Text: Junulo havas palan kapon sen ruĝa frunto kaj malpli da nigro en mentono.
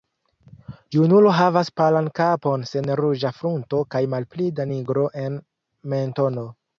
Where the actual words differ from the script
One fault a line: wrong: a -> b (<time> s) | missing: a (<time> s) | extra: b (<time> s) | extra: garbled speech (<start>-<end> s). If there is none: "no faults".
no faults